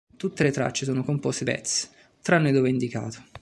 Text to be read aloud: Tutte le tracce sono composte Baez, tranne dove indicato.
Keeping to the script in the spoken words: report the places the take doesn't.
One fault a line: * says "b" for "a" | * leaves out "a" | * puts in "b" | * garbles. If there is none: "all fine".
all fine